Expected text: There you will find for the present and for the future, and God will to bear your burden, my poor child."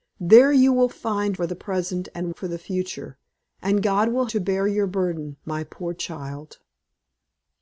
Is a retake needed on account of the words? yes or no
no